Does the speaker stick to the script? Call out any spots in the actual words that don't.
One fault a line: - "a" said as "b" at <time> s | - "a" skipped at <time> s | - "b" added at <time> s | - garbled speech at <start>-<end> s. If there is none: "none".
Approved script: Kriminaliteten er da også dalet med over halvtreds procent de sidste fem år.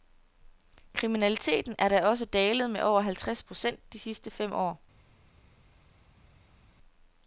none